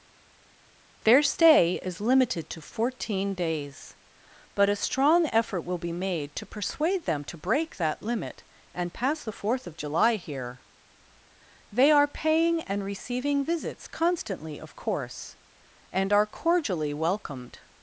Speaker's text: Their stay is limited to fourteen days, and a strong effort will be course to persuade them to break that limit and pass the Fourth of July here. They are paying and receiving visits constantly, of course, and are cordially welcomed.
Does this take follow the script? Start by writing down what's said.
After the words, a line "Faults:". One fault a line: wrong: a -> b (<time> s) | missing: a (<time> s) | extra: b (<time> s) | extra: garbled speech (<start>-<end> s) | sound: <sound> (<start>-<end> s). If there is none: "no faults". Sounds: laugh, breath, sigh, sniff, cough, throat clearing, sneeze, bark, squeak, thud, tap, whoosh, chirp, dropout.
Their stay is limited to fourteen days, but a strong effort will be made to persuade them to break that limit and pass the Fourth of July here. They are paying and receiving visits constantly, of course, and are cordially welcomed.
Faults:
wrong: and -> but (4.5 s)
wrong: course -> made (5.9 s)